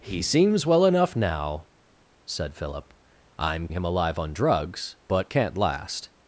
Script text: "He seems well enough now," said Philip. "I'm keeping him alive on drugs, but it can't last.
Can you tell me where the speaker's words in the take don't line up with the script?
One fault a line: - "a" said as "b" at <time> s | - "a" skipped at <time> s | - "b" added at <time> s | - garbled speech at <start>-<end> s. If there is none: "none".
- "keeping" skipped at 3.7 s
- "it" skipped at 5.3 s